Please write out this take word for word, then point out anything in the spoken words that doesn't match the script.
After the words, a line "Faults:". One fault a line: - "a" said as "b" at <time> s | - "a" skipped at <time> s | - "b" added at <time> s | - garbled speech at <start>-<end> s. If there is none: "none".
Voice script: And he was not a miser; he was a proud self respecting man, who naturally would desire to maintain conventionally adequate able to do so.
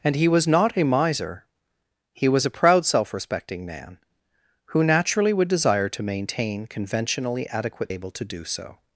And he was not a miser; he was a proud self respecting man, who naturally would desire to maintain conventionally adequate able to do so.
Faults:
none